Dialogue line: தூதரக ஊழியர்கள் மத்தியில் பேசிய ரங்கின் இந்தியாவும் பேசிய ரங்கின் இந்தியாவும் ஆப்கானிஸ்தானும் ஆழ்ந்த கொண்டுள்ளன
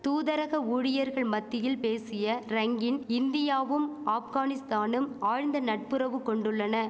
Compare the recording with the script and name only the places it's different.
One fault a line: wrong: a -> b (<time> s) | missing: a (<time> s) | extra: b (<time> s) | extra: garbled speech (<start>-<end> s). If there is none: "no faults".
missing: பேசிய ரங்கின் இந்தியாவும் (3.9 s)
extra: நட்புறவு (5.6 s)